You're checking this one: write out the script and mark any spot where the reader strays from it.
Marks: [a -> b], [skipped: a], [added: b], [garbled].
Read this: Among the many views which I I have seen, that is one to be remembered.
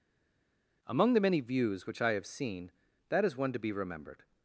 Among the many views which I [skipped: I] have seen, that is one to be remembered.